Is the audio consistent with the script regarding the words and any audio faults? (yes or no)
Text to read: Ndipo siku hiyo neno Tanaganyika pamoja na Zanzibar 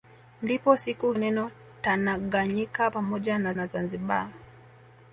no